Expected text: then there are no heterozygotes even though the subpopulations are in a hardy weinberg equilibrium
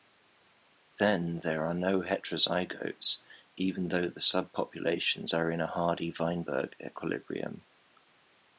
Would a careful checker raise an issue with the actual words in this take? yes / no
no